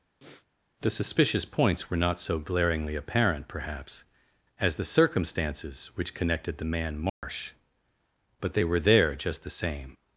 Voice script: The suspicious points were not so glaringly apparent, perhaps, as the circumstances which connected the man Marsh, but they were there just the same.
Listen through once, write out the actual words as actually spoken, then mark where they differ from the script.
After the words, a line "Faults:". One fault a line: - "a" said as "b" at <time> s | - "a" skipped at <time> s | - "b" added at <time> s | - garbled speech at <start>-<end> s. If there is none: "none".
The suspicious points were not so glaringly apparent, perhaps, as the circumstances which connected the man Marsh, but they were there just the same.
Faults:
none